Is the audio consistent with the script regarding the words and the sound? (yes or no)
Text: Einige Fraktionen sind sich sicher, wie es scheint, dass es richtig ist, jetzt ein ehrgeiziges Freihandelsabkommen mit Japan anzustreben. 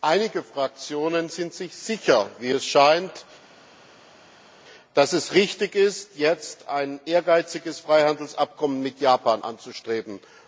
yes